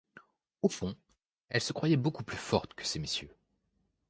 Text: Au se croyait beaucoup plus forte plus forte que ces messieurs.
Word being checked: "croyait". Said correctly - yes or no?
yes